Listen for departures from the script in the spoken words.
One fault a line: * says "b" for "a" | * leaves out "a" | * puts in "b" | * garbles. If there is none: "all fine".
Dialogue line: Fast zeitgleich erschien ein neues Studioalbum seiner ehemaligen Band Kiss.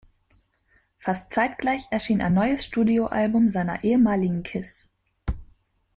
* leaves out "Band"